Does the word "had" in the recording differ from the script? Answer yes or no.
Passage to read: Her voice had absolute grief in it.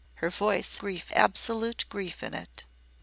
yes